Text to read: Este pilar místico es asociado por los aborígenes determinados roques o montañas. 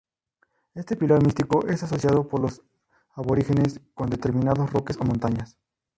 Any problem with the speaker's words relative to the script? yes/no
yes